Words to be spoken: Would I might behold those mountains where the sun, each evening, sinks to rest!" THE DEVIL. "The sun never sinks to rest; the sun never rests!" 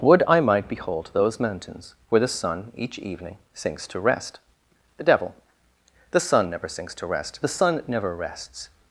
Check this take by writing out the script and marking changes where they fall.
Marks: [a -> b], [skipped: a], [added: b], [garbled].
Would I might behold those mountains where the sun, each evening, sinks to rest!" THE DEVIL. "The sun never sinks to rest; the sun never rests!"